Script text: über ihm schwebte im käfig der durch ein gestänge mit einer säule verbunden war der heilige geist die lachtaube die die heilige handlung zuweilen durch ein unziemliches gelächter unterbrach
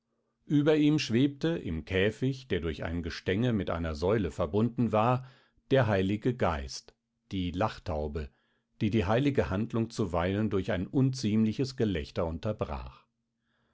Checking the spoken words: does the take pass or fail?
pass